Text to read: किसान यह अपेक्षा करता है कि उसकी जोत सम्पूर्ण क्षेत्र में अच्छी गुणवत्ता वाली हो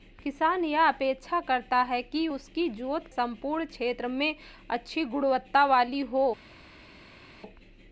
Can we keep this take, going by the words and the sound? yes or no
yes